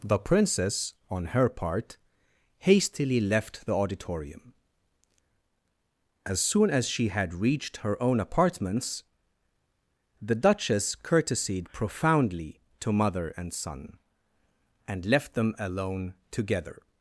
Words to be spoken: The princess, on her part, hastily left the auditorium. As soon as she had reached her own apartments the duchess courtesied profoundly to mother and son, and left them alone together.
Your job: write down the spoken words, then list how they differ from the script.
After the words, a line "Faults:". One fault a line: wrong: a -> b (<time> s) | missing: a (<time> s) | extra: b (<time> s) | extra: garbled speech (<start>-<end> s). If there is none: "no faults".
The princess, on her part, hastily left the auditorium. As soon as she had reached her own apartments the duchess courtesied profoundly to mother and son, and left them alone together.
Faults:
no faults